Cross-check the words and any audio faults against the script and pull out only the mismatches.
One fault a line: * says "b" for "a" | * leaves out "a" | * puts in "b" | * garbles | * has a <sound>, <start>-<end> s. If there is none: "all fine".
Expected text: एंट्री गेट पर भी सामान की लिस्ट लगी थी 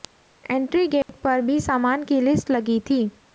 * has a dropout, 1.0-1.1 s